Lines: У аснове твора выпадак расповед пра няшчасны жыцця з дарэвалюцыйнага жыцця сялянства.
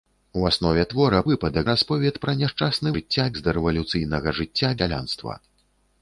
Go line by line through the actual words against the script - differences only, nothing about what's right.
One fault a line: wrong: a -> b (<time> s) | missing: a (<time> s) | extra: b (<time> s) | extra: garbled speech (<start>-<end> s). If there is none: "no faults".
no faults